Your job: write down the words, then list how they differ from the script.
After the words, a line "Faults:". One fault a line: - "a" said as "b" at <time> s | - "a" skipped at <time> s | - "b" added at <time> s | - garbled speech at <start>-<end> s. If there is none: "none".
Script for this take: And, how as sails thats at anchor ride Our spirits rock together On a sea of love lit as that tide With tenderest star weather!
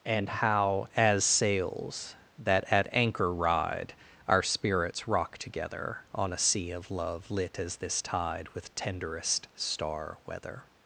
And, how as sails that at anchor ride Our spirits rock together On a sea of love lit as this tide With tenderest star weather!
Faults:
- "thats" said as "that" at 2.4 s
- "that" said as "this" at 7.8 s